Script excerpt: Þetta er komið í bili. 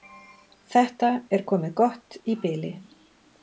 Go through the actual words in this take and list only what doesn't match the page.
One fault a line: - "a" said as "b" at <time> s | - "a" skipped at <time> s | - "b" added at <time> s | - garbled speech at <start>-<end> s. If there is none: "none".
- "gott" added at 1.8 s